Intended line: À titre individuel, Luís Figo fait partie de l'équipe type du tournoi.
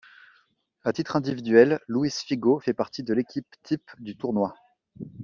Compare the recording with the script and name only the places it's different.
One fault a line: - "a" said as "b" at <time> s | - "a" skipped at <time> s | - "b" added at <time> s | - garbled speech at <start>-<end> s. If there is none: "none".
none